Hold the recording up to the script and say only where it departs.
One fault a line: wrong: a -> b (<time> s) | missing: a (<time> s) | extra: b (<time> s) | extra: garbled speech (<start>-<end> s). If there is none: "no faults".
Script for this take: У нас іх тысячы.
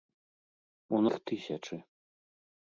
missing: нас (1.0 s)